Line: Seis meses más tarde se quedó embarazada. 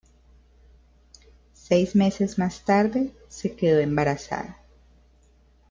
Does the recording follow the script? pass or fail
pass